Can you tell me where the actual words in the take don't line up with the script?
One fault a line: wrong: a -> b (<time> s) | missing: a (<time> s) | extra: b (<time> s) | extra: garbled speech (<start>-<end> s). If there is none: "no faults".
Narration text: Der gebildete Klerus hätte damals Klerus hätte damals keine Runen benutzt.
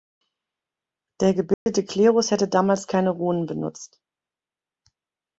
missing: Klerus hätte damals (2.9 s)